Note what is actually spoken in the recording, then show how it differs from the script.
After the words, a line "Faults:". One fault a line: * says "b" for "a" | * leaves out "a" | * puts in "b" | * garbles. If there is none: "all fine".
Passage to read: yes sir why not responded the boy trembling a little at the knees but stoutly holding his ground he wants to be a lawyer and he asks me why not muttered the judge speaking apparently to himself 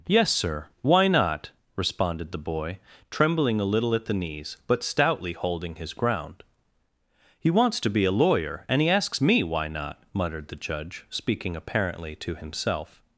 yes sir why not responded the boy trembling a little at the knees but stoutly holding his ground he wants to be a lawyer and he asks me why not muttered the judge speaking apparently to himself
Faults:
all fine